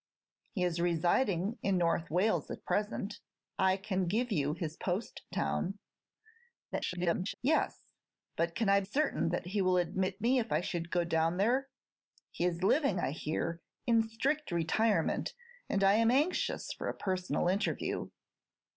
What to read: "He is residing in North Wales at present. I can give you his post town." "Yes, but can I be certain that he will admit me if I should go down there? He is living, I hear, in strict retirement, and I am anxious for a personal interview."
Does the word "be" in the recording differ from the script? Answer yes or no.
yes